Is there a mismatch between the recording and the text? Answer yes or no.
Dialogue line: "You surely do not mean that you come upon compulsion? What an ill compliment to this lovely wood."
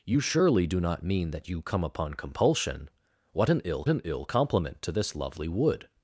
yes